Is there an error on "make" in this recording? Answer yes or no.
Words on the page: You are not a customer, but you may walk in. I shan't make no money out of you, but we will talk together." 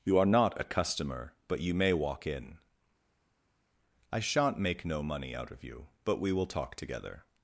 no